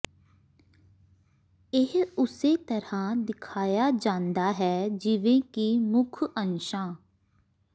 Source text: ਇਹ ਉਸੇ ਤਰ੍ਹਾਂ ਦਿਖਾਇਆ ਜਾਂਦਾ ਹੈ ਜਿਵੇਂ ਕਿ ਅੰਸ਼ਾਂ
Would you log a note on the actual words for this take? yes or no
yes